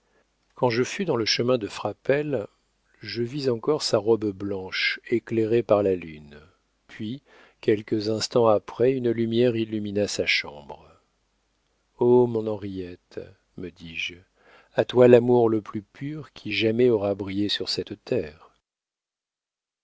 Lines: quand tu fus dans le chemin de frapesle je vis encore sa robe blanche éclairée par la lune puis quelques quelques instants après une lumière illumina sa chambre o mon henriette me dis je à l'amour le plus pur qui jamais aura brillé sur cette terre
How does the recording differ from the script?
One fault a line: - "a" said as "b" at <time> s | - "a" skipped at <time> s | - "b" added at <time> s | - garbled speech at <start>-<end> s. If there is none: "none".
- "tu" said as "je" at 0.7 s
- "quelques" skipped at 8.1 s
- "toi" added at 14.8 s